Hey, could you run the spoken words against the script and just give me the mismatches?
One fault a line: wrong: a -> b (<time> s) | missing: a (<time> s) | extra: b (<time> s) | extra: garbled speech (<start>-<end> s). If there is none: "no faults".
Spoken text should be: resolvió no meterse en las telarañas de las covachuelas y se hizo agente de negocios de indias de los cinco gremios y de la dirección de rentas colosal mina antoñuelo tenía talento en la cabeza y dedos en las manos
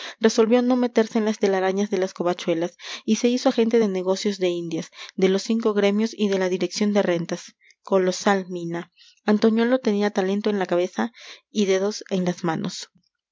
no faults